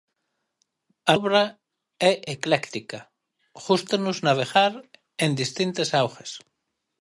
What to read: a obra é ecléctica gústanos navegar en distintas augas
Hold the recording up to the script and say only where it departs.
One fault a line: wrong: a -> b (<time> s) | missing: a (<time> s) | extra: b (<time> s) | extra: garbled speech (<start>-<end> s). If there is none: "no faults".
no faults